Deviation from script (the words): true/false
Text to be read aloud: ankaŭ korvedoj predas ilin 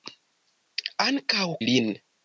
true